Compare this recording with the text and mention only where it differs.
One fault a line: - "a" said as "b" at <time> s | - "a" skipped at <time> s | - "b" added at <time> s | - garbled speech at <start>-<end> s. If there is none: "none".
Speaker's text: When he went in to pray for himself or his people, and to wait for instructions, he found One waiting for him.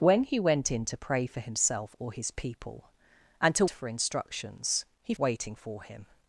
- "wait" skipped at 3.6 s
- "found One" skipped at 5.1 s